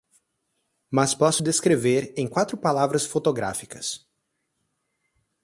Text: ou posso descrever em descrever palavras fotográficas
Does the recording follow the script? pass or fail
fail